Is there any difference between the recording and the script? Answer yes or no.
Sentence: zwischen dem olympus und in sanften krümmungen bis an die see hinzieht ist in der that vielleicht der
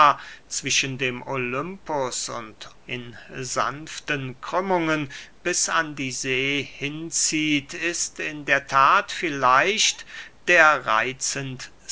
no